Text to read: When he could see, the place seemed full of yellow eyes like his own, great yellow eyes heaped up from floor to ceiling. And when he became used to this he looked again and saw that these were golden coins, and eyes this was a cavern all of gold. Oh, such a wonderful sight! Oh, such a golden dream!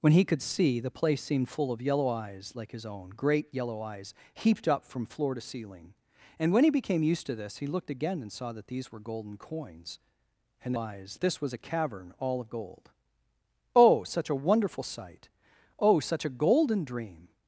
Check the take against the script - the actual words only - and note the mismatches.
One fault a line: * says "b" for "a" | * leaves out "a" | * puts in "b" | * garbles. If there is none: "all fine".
all fine